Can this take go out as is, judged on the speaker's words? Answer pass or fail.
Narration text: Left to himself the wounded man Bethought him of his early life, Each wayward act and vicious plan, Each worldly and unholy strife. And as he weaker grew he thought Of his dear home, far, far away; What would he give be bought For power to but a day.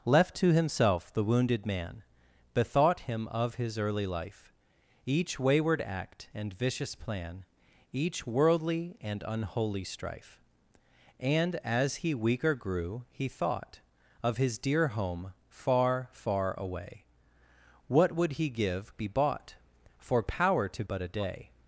pass